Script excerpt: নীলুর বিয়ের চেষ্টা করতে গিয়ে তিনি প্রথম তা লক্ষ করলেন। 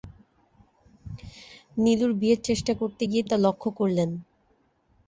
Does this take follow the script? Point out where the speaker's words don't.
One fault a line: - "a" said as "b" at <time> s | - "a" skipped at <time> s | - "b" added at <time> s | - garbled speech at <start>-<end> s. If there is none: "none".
- "তিনি প্রথম" skipped at 3.2 s